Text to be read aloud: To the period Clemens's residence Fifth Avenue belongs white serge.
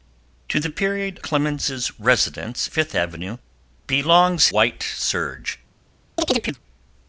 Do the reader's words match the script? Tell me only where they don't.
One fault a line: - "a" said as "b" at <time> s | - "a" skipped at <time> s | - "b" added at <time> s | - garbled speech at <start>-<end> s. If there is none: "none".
none